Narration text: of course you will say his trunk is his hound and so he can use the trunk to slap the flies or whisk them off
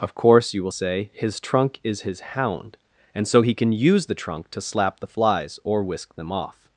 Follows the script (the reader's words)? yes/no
yes